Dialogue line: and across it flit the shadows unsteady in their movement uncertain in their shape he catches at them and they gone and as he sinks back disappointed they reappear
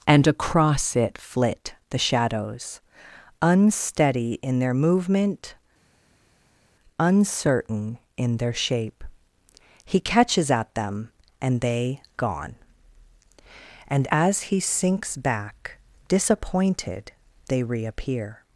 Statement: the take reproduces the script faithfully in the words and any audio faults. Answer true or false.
true